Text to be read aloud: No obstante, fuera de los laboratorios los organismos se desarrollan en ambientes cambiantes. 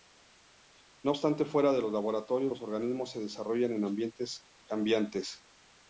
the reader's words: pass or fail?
pass